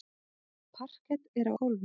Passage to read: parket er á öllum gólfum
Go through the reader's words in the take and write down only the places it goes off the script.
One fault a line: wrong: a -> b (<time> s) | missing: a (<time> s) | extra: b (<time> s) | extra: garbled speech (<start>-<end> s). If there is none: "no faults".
missing: öllum (1.5 s)